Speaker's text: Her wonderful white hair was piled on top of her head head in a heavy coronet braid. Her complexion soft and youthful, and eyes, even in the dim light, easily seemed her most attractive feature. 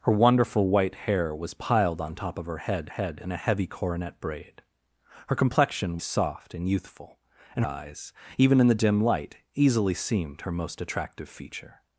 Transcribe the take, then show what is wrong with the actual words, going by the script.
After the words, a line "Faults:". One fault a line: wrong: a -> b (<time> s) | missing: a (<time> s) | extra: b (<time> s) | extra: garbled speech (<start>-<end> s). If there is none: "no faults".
Her wonderful white hair was piled on top of her head head in a heavy coronet braid. Her complexion soft and youthful, and eyes, even in the dim light, easily seemed her most attractive feature.
Faults:
no faults